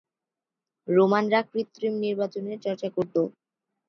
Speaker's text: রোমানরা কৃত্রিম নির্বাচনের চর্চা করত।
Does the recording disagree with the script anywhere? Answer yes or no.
no